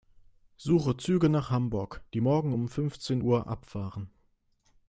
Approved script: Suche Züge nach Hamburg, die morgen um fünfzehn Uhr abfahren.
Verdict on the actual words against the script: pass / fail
pass